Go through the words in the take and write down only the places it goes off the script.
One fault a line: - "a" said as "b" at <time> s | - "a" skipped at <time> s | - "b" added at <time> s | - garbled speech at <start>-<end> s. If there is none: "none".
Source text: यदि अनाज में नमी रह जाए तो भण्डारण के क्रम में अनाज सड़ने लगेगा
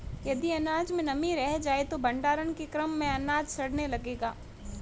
none